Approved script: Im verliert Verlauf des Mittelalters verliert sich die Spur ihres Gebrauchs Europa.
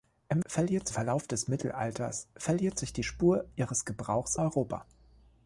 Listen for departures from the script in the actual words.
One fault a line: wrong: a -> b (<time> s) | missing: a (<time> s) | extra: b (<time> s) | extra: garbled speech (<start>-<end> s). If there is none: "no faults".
no faults